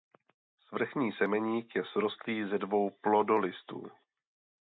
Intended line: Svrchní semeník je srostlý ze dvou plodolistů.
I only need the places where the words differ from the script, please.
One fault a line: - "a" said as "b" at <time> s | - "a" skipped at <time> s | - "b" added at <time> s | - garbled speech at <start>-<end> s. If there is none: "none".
none